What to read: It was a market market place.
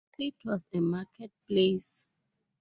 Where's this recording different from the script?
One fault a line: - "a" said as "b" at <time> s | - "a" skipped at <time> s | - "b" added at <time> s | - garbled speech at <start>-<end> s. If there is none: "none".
- "market" skipped at 1.3 s